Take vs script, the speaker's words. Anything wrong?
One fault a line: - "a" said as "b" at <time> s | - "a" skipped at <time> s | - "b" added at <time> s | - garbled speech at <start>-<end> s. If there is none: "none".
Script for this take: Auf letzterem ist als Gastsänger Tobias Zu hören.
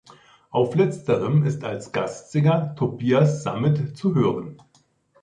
- "Sammet" added at 3.4 s